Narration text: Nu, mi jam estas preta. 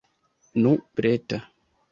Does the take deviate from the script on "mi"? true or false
true